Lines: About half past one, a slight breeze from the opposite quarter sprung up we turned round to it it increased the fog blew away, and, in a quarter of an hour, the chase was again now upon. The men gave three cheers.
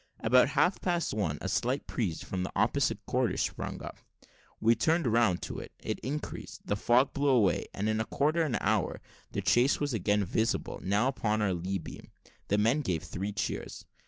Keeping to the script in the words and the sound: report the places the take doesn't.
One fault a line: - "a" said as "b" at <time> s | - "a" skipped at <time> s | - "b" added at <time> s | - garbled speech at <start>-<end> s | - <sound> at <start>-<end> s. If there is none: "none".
- "visible" added at 10.2 s
- "our lee beam" added at 11.4 s